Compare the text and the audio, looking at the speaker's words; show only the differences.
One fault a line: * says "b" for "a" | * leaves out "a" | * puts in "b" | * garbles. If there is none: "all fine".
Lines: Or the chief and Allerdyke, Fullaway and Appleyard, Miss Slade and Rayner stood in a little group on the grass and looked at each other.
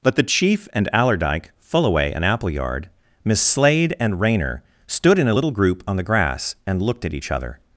* says "But" for "Or"